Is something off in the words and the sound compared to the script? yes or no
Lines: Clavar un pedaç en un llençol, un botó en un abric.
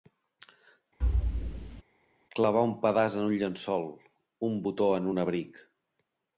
yes